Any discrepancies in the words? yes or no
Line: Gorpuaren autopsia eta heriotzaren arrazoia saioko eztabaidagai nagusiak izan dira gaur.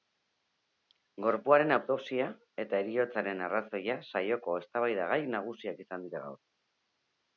no